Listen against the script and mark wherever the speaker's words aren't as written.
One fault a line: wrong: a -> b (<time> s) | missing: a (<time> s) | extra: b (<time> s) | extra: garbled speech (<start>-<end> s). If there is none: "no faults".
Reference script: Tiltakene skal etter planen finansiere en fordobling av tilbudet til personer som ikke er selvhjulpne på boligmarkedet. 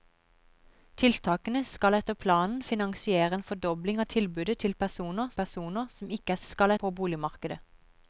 extra: personer (5.4 s)
wrong: selvhjulpne -> skal (6.5 s)